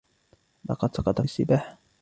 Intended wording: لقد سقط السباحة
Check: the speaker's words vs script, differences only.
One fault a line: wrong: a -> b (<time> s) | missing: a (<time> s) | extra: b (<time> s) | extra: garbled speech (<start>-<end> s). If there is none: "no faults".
no faults